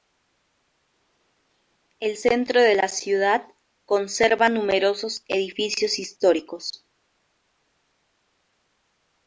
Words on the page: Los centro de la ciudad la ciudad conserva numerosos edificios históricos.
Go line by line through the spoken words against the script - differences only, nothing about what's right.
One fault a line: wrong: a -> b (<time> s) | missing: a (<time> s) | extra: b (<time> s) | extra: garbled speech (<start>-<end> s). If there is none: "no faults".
wrong: Los -> El (2.0 s)
missing: la ciudad (3.5 s)